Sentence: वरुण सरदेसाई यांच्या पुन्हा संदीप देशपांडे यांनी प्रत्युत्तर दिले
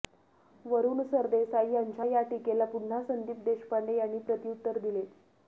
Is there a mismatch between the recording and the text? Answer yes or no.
yes